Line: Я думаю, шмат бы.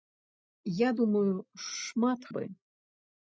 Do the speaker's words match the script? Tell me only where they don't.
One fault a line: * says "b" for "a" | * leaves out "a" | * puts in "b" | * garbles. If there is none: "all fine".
all fine